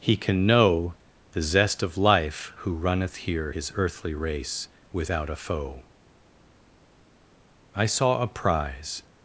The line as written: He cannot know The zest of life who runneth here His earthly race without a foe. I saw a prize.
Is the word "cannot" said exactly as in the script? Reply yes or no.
no